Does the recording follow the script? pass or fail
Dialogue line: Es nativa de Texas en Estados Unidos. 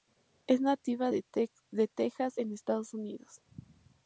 pass